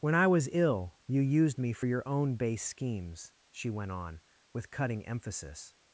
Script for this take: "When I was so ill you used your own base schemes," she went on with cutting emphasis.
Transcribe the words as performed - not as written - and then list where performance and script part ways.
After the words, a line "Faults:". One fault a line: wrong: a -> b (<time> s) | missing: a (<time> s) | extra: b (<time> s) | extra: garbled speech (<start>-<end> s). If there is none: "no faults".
"When I was ill you used me for your own base schemes," she went on with cutting emphasis.
Faults:
missing: so (0.5 s)
extra: me for (1.6 s)